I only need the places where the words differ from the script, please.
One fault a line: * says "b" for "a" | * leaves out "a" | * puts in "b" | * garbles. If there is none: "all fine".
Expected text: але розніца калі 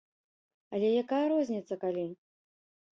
* puts in "якая"